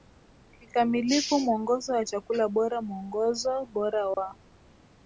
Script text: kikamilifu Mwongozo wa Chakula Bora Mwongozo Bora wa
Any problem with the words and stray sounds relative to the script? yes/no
yes